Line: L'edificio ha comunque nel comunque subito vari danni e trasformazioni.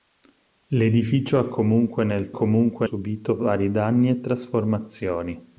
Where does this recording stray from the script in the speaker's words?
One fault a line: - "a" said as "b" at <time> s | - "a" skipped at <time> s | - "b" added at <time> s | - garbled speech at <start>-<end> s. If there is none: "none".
none